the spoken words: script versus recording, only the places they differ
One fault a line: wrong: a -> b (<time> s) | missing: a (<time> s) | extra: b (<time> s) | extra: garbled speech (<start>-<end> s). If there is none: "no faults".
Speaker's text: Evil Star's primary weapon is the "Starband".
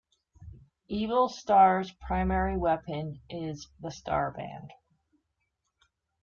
no faults